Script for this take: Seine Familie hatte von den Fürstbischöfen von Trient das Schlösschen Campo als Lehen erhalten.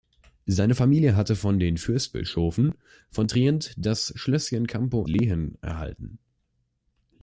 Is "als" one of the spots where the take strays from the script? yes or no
yes